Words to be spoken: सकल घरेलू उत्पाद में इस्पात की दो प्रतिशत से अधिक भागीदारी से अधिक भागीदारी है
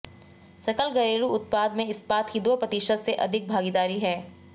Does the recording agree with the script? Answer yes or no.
no